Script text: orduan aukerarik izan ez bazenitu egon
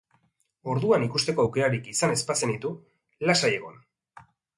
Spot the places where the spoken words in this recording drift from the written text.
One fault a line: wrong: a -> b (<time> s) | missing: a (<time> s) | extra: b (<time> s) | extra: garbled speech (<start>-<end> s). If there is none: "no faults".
extra: ikusteko (1.1 s)
extra: lasai (3.3 s)